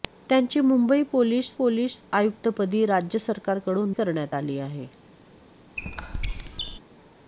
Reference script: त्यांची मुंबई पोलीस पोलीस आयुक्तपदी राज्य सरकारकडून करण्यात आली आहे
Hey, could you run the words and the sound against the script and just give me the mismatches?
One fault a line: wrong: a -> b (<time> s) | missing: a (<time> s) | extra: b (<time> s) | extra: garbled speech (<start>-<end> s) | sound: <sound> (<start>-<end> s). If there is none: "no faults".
sound: squeak (5.8-6.8 s)